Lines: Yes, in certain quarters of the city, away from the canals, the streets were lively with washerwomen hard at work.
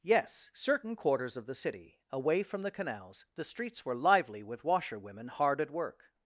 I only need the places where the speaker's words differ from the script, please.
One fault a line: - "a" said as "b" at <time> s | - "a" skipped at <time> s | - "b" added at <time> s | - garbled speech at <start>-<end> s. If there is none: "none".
- "in" skipped at 0.5 s